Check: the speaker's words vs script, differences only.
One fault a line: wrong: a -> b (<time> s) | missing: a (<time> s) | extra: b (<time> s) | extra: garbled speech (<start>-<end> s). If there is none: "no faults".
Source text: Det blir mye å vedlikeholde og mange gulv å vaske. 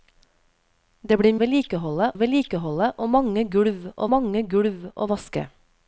wrong: mye -> vedlikeholde (1.4 s)
extra: mange gulv å (4.1 s)